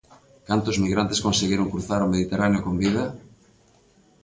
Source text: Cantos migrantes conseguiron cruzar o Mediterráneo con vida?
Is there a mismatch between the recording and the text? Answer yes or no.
no